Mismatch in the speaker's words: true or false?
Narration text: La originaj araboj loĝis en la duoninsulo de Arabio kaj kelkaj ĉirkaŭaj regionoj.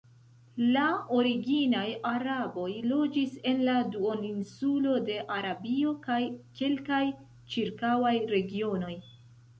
false